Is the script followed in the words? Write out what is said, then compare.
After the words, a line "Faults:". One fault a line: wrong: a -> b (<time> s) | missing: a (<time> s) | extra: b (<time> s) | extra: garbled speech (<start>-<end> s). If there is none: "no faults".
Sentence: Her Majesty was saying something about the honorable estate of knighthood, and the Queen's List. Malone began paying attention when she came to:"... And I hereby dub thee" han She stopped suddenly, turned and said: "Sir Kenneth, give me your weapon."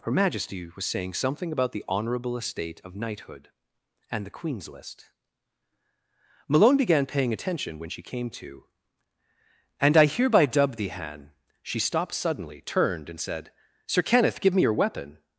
Her Majesty was saying something about the honorable estate of knighthood, and the Queen's List. Malone began paying attention when she came to:"... And I hereby dub thee" han She stopped suddenly, turned and said: "Sir Kenneth, give me your weapon."
Faults:
no faults